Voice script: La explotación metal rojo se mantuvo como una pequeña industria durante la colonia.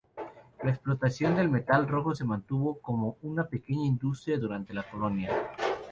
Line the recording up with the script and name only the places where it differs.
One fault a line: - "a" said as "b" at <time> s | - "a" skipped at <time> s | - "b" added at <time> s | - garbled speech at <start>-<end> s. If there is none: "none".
- "del" added at 1.4 s